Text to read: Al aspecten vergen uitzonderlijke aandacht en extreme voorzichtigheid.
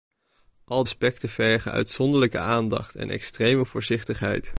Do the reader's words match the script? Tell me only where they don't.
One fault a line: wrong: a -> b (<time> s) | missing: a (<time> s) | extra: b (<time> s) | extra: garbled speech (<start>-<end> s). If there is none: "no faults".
no faults